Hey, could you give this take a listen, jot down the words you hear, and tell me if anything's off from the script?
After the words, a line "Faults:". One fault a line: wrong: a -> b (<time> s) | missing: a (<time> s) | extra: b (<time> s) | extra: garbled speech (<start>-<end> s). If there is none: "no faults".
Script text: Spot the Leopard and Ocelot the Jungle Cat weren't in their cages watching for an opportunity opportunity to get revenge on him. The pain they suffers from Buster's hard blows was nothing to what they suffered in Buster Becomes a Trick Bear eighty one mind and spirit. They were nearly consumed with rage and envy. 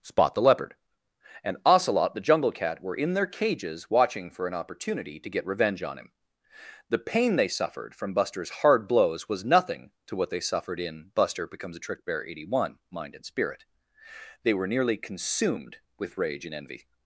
Spot the Leopard and Ocelot the Jungle Cat were in their cages watching for an opportunity to get revenge on him. The pain they suffered from Buster's hard blows was nothing to what they suffered in Buster Becomes a Trick Bear eighty one mind and spirit. They were nearly consumed with rage and envy.
Faults:
wrong: weren't -> were (2.8 s)
missing: opportunity (5.2 s)
wrong: suffers -> suffered (7.5 s)